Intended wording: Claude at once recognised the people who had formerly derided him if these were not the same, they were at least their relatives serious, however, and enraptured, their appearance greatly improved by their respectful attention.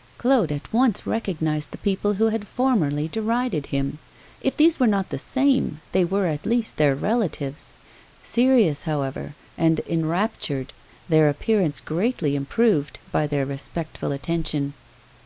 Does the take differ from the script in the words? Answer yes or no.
no